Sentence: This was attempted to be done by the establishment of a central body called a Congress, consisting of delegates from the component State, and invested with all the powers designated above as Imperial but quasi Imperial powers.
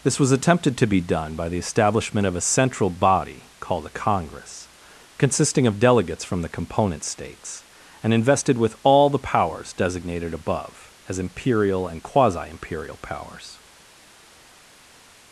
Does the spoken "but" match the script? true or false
false